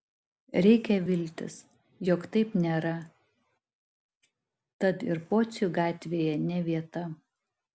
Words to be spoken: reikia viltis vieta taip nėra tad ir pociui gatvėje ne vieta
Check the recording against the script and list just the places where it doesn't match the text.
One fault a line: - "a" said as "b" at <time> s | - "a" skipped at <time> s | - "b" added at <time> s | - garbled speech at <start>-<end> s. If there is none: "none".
- "vieta" said as "jog" at 2.1 s